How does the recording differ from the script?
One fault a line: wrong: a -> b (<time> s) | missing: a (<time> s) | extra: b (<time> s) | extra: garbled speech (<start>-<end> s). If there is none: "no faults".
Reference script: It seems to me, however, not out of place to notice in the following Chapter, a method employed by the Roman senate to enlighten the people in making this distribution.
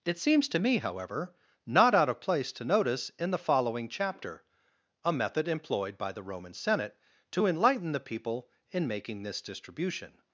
no faults